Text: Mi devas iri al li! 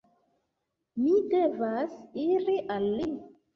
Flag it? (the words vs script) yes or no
no